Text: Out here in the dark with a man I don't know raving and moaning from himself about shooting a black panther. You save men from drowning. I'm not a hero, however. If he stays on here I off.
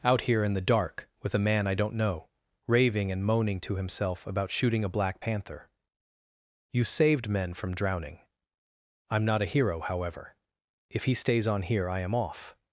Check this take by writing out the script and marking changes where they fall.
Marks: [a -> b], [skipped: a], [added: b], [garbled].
Out here in the dark with a man I don't know raving and moaning [from -> to] himself about shooting a black panther. You [save -> saved] men from drowning. I'm not a hero, however. If he stays on here I [added: am] off.